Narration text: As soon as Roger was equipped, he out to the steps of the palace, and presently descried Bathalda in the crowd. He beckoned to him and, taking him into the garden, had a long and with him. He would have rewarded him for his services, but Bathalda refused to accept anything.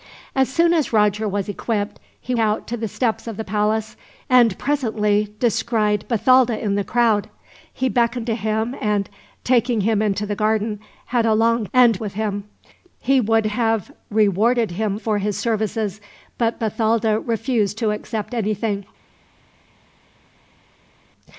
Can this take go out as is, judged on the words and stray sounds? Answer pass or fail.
pass